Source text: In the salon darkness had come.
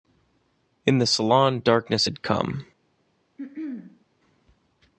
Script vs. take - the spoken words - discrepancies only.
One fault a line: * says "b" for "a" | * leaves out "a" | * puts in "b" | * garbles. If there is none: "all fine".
all fine